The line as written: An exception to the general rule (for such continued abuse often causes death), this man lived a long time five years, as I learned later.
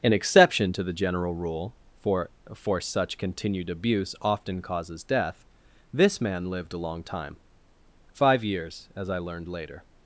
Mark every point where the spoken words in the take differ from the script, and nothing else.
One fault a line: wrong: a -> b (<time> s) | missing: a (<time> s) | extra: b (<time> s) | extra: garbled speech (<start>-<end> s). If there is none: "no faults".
extra: for (2.5 s)